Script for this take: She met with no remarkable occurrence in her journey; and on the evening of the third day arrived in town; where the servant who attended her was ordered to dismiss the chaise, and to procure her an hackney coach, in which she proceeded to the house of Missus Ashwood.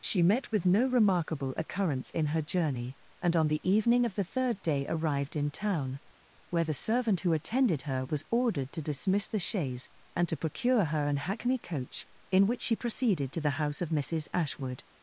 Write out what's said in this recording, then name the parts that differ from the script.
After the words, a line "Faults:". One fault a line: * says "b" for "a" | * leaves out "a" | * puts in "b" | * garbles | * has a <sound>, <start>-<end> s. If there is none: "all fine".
She met with no remarkable occurrence in her journey; and on the evening of the third day arrived in town; where the servant who attended her was ordered to dismiss the chaise, and to procure her an hackney coach, in which she proceeded to the house of Missus Ashwood.
Faults:
all fine